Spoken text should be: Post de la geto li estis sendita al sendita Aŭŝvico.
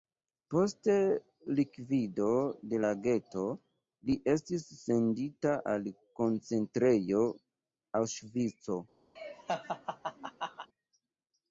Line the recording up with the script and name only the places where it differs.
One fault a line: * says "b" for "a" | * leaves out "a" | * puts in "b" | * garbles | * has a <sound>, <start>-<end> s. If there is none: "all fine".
* puts in "likvido"
* says "koncentrejo" for "sendita"
* has a laugh, 9.2-10.7 s